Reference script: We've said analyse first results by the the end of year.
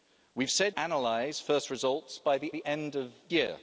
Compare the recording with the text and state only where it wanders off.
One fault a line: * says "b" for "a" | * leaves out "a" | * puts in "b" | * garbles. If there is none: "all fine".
all fine